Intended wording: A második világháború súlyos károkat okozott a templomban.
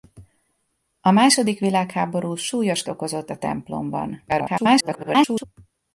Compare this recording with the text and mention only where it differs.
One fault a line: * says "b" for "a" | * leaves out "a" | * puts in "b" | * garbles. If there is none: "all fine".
* leaves out "károkat"
* garbles